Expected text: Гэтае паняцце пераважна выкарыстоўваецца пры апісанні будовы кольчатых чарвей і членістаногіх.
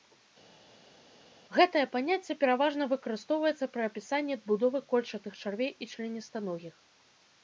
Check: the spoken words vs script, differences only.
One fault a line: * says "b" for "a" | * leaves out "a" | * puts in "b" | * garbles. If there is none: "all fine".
all fine